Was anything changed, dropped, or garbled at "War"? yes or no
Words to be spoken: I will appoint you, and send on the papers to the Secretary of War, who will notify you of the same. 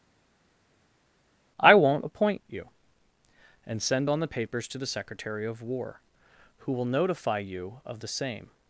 no